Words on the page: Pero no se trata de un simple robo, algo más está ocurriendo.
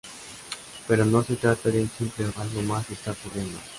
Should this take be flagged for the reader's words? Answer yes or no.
yes